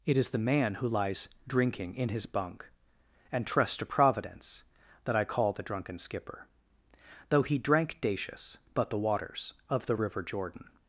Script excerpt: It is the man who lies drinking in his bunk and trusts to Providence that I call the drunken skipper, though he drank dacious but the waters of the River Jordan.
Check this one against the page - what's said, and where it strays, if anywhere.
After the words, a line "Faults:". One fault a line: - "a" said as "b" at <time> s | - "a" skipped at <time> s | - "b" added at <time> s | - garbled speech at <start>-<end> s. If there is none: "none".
It is the man who lies drinking in his bunk and trusts to Providence that I call the drunken skipper, though he drank dacious but the waters of the River Jordan.
Faults:
none